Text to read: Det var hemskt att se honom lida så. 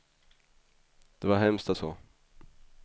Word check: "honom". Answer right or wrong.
wrong